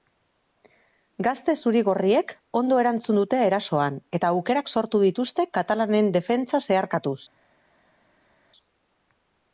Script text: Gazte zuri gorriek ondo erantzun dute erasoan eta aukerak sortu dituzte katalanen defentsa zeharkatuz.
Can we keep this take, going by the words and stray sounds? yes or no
yes